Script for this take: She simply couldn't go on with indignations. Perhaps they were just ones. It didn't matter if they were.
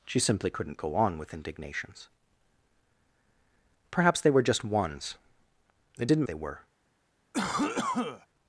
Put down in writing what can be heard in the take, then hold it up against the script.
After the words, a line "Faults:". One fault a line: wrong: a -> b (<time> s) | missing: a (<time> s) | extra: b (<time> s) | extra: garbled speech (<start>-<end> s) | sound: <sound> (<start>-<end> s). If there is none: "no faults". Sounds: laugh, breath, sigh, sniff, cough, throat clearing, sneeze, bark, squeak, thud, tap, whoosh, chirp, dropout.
She simply couldn't go on with indignations. Perhaps they were just ones. It didn't they were.
Faults:
missing: matter if (6.3 s)
sound: cough (7.3-8.3 s)